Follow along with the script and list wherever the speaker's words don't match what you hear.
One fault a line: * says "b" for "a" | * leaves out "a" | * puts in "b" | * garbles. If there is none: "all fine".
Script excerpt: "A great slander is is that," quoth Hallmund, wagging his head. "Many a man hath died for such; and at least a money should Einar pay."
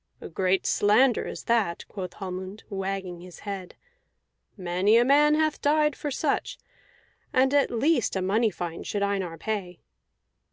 * leaves out "is"
* puts in "fine"